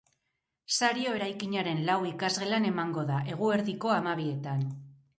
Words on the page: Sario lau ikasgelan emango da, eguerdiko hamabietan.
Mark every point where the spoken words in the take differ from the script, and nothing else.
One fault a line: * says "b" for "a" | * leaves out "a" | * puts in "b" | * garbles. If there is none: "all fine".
* puts in "eraikinaren"